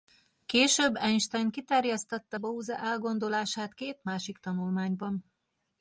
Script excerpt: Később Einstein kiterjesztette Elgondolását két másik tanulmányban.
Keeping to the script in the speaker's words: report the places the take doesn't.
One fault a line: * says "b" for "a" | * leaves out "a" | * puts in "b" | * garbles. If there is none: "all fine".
* puts in "Bose"